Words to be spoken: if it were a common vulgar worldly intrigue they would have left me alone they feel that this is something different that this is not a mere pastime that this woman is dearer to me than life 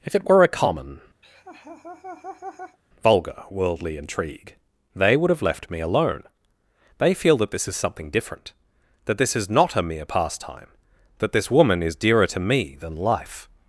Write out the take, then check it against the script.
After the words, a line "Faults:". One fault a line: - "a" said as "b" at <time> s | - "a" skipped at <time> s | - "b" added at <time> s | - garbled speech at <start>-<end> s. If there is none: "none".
if it were a common vulgar worldly intrigue they would have left me alone they feel that this is something different that this is not a mere pastime that this woman is dearer to me than life
Faults:
none